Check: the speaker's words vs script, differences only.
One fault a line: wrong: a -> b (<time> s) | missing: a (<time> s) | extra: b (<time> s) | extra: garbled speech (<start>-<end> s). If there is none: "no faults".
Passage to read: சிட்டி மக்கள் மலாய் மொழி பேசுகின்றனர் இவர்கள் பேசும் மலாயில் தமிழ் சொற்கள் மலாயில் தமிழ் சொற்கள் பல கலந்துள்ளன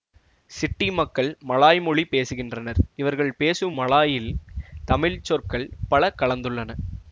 missing: மலாயில் தமிழ் சொற்கள் (5.7 s)